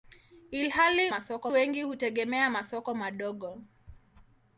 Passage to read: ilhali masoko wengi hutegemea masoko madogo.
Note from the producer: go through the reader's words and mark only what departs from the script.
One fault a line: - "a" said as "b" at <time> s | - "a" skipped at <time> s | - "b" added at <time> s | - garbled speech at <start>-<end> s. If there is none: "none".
none